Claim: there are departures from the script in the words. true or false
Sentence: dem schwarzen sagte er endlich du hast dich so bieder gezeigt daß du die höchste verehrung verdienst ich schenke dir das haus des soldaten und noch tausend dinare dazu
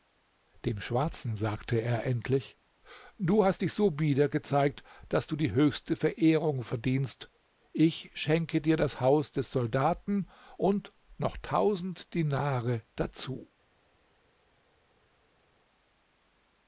false